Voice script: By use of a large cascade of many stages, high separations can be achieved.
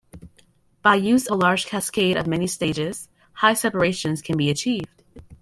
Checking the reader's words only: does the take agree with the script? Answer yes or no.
no